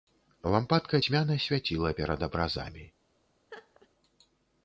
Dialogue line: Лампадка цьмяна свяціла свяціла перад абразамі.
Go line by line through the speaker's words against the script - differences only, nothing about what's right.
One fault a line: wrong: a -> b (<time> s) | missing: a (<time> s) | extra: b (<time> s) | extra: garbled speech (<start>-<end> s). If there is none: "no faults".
missing: свяціла (2.0 s)